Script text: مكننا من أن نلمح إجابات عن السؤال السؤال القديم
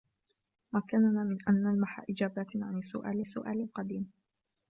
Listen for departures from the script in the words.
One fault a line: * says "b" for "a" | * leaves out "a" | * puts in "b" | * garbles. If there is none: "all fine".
all fine